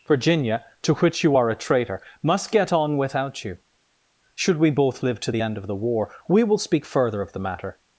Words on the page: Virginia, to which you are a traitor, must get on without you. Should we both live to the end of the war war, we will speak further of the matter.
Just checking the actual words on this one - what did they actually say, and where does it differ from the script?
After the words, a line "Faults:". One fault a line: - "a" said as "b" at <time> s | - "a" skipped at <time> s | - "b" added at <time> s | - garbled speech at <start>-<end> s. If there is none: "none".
Virginia, to which you are a traitor, must get on without you. Should we both live to the end of the war, we will speak further of the matter.
Faults:
- "war" skipped at 6.1 s